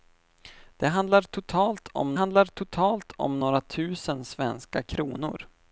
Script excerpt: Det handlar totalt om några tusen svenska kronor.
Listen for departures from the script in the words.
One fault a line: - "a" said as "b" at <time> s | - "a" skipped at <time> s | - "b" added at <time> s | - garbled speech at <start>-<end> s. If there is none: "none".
- "handlar totalt om" added at 2.1 s